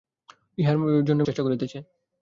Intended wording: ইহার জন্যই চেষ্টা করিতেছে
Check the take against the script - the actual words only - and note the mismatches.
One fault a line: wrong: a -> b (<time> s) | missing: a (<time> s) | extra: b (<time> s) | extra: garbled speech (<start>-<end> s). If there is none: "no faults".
no faults